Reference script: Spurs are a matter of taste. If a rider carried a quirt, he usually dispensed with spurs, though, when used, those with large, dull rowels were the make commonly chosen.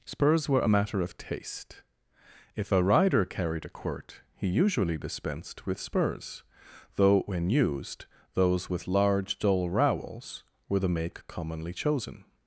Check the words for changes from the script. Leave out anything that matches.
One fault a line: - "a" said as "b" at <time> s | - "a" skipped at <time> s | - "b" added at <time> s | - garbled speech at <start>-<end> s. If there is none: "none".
- "are" said as "were" at 0.5 s